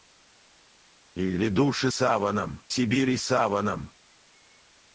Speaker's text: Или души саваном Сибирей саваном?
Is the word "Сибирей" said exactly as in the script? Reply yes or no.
yes